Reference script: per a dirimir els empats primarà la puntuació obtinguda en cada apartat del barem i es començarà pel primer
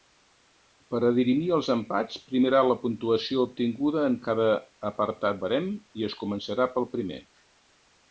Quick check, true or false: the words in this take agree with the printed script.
false